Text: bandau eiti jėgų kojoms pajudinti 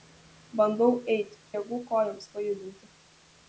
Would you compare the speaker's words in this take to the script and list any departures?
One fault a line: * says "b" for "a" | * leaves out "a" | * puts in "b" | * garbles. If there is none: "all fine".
all fine